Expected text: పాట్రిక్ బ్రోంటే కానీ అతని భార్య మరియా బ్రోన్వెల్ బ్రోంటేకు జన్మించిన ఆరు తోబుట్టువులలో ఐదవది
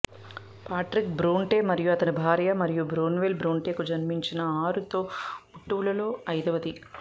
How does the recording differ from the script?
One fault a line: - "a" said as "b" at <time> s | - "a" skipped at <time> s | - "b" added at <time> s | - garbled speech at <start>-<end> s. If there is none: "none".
- "కానీ" said as "మరియు" at 1.7 s